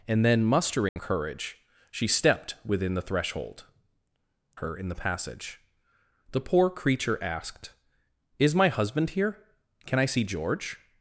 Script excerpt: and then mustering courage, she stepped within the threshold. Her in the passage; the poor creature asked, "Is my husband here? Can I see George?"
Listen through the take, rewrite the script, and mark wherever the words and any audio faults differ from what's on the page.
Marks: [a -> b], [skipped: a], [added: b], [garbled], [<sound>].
and then mustering [dropout] courage, she stepped within the threshold. Her in the passage; the poor creature asked, "Is my husband here? Can I see George?"